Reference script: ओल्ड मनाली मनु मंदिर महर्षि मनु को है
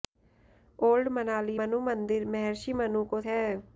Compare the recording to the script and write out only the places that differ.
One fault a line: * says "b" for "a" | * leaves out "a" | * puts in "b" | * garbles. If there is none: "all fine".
all fine